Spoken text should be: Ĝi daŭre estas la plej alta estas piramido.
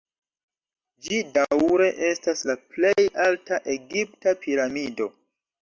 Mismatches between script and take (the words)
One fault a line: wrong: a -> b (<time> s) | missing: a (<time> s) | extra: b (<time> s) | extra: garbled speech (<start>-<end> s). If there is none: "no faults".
wrong: estas -> egipta (3.8 s)